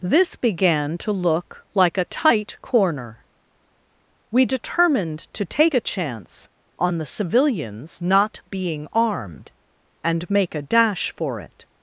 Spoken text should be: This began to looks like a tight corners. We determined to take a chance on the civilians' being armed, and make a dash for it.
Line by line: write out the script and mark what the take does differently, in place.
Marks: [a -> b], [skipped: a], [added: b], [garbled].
This began to [looks -> look] like a tight [corners. -> corner] We determined to take a chance on the civilians' [added: not] being armed, and make a dash for it.